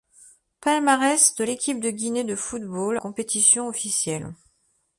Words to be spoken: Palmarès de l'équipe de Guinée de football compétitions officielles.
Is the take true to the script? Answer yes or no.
yes